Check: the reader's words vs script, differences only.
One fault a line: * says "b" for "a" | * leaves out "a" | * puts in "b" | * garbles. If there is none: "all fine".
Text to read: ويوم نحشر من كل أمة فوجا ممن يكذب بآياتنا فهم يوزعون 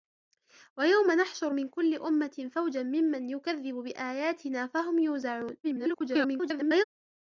* garbles